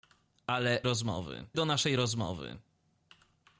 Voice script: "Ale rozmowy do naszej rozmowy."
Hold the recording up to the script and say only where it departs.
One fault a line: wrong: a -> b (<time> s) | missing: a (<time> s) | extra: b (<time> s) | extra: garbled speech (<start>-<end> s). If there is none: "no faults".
no faults